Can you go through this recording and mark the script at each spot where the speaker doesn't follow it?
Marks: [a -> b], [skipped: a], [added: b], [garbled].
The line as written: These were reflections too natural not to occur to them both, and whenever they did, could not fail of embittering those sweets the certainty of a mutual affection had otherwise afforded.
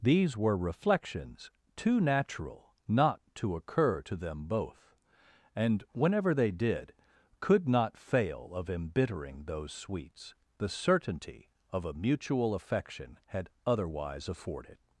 These were reflections too natural not to occur to them both, and whenever they did, could not fail of embittering those sweets the certainty of a mutual affection had otherwise afforded.